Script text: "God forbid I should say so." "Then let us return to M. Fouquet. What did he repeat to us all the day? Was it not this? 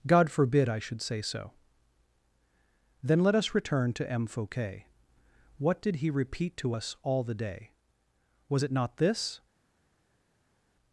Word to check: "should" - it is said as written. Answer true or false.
true